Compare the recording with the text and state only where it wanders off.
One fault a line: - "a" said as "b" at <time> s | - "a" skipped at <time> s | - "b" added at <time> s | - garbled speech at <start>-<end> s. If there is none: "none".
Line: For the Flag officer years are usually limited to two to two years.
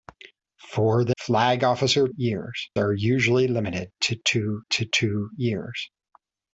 none